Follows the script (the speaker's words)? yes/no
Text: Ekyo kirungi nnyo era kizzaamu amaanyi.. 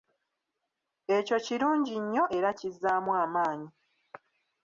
yes